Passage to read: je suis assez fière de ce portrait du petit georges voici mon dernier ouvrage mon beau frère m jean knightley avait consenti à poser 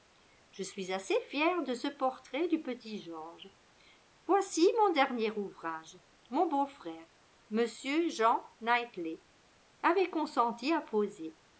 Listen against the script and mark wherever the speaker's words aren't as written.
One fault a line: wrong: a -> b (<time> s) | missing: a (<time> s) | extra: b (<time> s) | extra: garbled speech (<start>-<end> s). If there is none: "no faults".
no faults